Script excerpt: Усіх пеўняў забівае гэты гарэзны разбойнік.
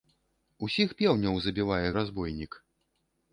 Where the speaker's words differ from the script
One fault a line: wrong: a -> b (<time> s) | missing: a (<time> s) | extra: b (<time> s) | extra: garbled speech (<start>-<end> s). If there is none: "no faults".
missing: гэты гарэзны (1.9 s)